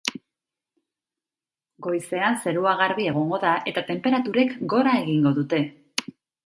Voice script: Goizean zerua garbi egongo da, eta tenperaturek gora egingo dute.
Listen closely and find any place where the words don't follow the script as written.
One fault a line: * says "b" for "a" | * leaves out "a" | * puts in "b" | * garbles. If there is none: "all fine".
all fine